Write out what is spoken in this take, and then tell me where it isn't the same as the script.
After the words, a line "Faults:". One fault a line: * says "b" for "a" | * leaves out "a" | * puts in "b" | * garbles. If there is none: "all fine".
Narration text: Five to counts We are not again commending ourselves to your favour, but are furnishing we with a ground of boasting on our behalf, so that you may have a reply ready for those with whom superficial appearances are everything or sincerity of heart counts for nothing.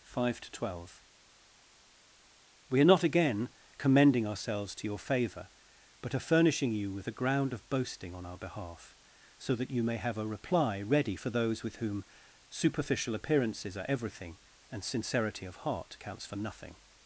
Five to twelve We are not again commending ourselves to your favour, but are furnishing you with a ground of boasting on our behalf, so that you may have a reply ready for those with whom superficial appearances are everything and sincerity of heart counts for nothing.
Faults:
* says "twelve" for "counts"
* says "you" for "we"
* says "and" for "or"